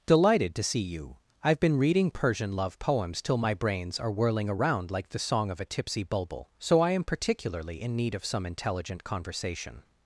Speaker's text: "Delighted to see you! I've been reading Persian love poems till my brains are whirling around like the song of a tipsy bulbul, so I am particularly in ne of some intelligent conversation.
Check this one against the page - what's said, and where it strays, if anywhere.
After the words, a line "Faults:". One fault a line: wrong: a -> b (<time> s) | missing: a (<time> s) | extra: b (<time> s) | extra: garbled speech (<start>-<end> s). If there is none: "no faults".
"Delighted to see you! I've been reading Persian love poems till my brains are whirling around like the song of a tipsy bulbul, so I am particularly in need of some intelligent conversation.
Faults:
wrong: ne -> need (8.0 s)